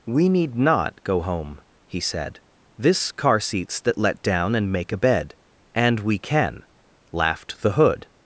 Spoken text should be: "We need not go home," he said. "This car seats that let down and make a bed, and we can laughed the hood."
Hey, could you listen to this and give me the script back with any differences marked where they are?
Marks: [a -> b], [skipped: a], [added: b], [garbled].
"We need not go home," he said. "This car seats that let down and make a bed, and we can laughed the hood."